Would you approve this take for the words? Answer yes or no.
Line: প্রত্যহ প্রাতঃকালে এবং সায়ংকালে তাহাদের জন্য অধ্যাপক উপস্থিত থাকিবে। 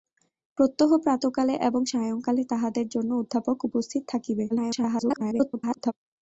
no